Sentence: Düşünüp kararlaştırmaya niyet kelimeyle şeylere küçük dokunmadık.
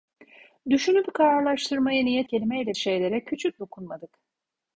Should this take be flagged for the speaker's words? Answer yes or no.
no